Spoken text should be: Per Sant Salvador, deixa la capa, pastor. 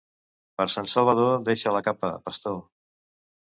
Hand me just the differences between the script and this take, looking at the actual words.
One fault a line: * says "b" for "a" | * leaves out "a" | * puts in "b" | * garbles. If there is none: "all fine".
all fine